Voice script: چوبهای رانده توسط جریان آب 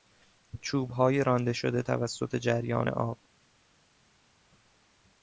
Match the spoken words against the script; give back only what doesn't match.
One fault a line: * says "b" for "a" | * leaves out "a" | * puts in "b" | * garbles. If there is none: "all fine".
* puts in "شده"